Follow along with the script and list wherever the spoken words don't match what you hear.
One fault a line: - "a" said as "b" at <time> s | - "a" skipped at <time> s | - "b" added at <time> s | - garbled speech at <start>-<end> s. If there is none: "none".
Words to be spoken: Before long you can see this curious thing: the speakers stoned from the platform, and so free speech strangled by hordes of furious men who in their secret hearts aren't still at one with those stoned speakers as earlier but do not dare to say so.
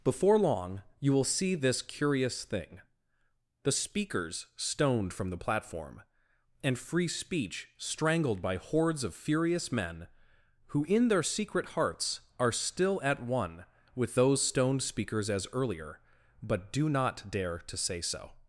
- "can" said as "will" at 1.1 s
- "so" skipped at 6.8 s
- "aren't" said as "are" at 12.4 s